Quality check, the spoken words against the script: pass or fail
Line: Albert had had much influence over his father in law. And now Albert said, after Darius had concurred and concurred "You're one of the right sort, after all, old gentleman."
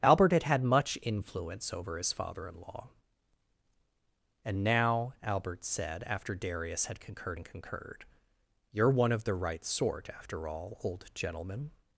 pass